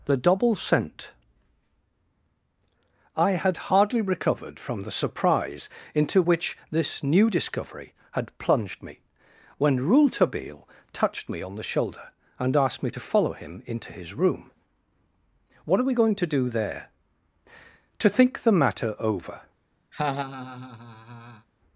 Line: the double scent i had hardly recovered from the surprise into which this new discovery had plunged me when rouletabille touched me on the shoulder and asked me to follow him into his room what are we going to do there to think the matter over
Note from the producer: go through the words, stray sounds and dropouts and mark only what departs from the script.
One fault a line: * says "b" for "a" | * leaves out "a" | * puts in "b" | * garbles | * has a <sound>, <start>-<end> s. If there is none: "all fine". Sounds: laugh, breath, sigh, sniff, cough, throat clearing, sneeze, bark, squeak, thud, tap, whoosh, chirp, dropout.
* has a laugh, 19.9-21.5 s